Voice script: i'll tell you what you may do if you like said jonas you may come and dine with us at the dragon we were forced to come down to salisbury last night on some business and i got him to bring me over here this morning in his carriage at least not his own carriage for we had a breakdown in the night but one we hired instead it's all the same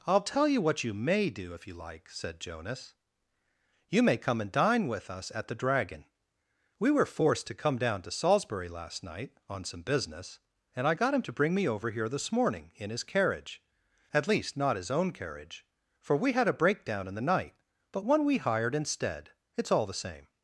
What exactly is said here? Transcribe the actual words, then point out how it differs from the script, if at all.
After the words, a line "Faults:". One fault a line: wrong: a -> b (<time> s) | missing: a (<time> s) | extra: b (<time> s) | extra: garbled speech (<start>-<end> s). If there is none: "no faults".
i'll tell you what you may do if you like said jonas you may come and dine with us at the dragon we were forced to come down to salisbury last night on some business and i got him to bring me over here this morning in his carriage at least not his own carriage for we had a breakdown in the night but one we hired instead it's all the same
Faults:
no faults